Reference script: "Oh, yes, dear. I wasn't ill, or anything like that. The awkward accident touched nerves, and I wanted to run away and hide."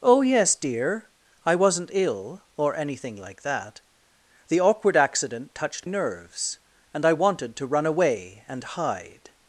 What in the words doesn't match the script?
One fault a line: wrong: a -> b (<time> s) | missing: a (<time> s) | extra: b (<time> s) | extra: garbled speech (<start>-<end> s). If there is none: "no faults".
no faults